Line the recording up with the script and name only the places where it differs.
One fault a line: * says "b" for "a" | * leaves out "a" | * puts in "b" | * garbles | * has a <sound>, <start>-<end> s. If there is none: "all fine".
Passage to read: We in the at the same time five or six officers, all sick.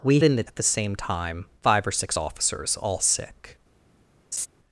* has a laugh, 4.3-4.5 s